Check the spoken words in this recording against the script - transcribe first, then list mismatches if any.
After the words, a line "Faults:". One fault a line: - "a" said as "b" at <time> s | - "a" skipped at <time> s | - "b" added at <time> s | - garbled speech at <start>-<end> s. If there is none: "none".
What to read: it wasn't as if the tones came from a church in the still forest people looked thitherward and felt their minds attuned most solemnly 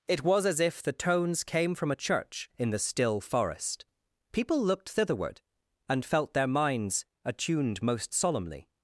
it was as if the tones came from a church in the still forest people looked thitherward and felt their minds attuned most solemnly
Faults:
- "wasn't" said as "was" at 0.2 s